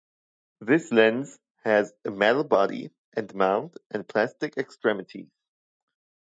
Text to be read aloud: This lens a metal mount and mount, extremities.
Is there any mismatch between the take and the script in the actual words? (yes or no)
yes